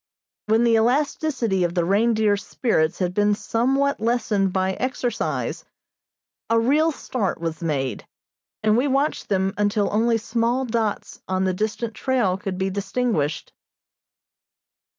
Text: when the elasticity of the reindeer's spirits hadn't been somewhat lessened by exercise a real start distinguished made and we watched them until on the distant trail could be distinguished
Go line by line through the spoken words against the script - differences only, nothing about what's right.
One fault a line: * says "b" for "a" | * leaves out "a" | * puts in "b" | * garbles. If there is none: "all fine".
* says "had" for "hadn't"
* says "was" for "distinguished"
* puts in "only small dots"